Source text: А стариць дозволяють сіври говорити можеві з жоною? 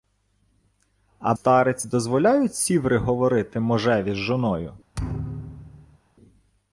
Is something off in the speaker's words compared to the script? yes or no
no